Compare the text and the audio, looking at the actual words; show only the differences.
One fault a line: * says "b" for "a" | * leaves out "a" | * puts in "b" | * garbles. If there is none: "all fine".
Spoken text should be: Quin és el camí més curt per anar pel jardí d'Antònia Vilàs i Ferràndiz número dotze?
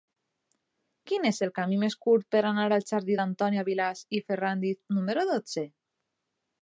* says "al" for "pel"